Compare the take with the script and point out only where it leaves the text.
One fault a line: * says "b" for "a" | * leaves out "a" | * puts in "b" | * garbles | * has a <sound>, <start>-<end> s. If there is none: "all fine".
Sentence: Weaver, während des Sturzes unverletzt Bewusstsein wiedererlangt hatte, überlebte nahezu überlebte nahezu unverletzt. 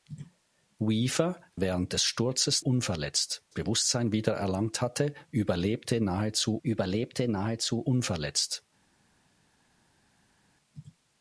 all fine